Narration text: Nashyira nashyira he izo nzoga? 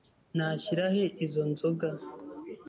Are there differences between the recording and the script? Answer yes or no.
yes